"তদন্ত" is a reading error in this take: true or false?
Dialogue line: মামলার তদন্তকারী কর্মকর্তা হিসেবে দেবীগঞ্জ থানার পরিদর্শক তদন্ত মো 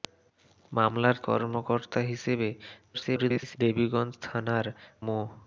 true